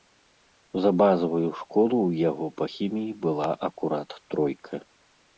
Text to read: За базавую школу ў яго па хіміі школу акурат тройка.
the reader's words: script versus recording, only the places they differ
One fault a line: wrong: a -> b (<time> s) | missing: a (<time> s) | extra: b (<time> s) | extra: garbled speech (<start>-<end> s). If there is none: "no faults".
wrong: школу -> была (3.3 s)